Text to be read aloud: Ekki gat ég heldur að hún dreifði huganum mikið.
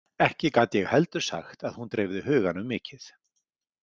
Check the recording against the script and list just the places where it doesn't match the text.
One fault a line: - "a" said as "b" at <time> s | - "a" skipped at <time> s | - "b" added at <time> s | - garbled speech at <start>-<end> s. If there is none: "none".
- "sagt" added at 1.3 s